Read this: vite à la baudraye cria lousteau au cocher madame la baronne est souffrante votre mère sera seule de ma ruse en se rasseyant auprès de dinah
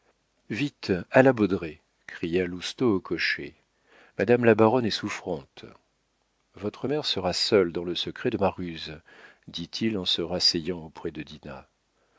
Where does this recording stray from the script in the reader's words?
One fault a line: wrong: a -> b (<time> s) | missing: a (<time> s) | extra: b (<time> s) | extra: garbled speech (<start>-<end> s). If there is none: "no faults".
extra: dans le secret (7.7 s)
extra: dit il (9.5 s)